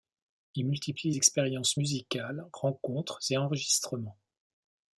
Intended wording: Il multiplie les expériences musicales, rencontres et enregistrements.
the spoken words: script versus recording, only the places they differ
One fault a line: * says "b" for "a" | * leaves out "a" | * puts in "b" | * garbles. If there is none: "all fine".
* leaves out "les"